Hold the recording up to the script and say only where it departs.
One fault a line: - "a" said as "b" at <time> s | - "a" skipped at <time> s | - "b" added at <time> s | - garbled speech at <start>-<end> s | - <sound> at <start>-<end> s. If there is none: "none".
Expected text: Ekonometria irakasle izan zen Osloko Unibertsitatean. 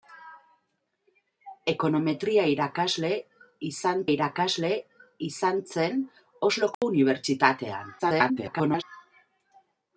- "irakasle izan" added at 4.1 s
- dropout at 6.7-6.8 s
- garbled speech at 8.0-8.8 s